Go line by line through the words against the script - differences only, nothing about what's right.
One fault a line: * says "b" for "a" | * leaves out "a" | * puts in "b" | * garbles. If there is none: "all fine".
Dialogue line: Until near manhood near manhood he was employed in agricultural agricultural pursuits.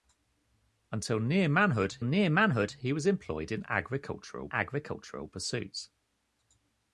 all fine